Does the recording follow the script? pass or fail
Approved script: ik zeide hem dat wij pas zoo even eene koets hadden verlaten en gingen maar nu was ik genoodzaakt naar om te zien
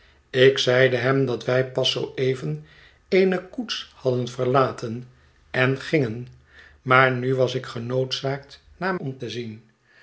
pass